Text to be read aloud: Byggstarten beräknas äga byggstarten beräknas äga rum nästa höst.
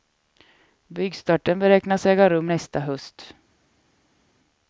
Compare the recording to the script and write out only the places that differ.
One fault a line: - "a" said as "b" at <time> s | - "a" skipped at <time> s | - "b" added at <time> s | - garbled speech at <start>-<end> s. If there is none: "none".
- "byggstarten beräknas äga" skipped at 2.3 s